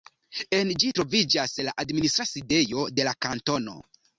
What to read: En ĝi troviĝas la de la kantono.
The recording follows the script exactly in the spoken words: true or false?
false